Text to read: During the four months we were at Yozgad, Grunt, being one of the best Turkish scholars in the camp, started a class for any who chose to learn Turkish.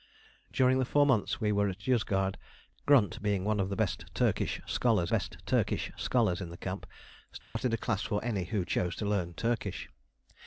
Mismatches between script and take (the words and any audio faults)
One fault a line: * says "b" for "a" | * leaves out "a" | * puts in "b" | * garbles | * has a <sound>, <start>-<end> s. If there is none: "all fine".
* puts in "best Turkish scholars"
* has a dropout, 7.4-7.6 s